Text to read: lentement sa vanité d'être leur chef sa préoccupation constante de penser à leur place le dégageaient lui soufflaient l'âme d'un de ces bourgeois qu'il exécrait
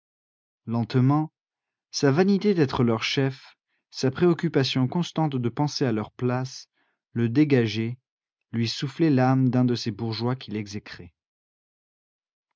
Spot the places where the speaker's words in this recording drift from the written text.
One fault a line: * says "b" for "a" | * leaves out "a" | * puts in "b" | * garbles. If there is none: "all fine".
all fine